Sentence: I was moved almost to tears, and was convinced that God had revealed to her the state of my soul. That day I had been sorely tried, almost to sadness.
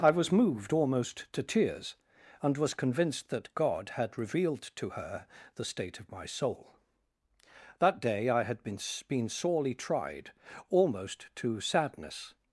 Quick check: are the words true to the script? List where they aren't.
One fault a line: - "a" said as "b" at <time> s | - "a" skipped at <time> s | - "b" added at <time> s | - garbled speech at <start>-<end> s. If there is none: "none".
- "been" added at 9.1 s